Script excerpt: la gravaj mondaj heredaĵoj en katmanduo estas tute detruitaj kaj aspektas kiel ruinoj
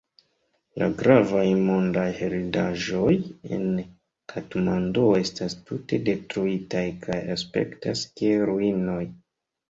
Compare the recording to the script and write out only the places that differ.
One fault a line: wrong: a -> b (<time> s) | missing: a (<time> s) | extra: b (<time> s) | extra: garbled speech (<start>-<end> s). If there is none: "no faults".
no faults